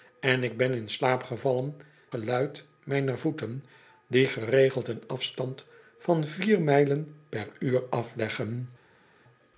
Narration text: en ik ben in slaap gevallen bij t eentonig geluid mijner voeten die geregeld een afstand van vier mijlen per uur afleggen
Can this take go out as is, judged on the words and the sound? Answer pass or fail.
fail